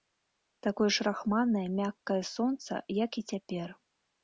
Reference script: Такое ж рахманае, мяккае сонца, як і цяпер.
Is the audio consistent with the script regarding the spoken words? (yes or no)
yes